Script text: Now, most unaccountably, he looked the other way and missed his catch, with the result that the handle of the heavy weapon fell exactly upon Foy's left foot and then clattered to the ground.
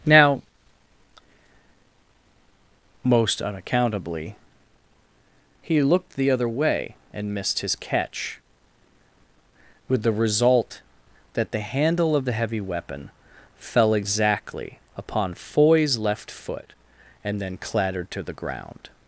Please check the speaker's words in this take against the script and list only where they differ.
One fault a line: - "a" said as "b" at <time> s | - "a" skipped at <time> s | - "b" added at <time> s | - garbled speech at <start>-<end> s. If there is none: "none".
none